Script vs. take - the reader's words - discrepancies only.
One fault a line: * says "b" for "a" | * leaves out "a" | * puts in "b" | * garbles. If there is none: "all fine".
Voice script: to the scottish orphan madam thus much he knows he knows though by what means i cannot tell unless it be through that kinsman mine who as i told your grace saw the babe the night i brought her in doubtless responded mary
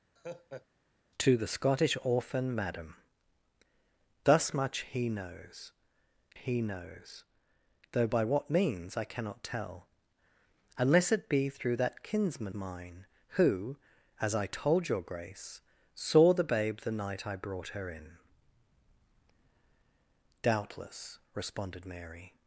all fine